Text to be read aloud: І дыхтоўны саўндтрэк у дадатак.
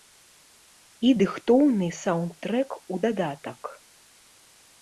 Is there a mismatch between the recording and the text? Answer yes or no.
no